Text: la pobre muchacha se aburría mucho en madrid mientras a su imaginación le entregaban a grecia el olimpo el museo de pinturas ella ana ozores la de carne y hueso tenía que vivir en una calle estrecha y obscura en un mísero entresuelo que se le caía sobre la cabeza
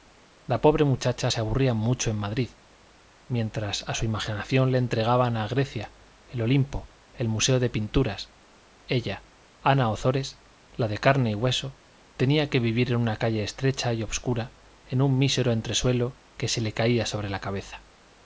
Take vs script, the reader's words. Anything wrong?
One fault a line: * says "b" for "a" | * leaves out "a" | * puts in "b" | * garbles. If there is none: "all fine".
all fine